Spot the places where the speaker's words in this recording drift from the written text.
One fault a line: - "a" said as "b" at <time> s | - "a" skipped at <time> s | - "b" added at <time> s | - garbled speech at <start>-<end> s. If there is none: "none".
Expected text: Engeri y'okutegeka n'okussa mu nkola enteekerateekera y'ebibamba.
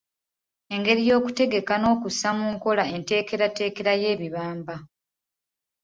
none